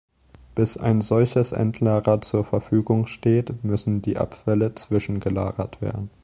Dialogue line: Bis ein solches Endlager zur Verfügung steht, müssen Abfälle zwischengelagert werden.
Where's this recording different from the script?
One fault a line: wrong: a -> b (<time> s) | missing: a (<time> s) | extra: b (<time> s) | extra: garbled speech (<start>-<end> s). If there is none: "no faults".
extra: die (4.0 s)